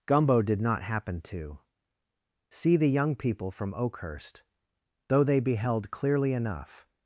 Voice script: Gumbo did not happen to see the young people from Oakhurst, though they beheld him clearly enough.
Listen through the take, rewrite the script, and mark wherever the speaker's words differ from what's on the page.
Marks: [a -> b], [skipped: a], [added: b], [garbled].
Gumbo did not happen to see the young people from Oakhurst, though they beheld [skipped: him] clearly enough.